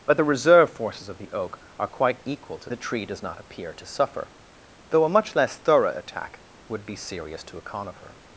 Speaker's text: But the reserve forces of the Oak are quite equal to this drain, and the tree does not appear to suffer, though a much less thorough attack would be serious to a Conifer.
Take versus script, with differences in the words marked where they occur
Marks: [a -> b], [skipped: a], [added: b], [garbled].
But the reserve forces of the Oak are quite equal to [skipped: this drain, and] the tree does not appear to suffer, though a much less thorough attack would be serious to a Conifer.